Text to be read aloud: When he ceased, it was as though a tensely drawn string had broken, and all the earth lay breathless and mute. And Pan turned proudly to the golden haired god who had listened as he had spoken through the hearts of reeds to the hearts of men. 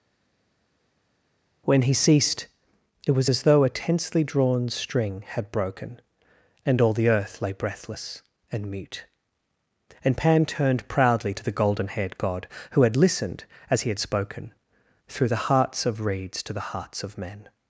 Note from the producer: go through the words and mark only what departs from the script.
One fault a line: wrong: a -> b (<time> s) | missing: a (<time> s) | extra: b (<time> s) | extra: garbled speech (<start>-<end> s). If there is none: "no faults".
no faults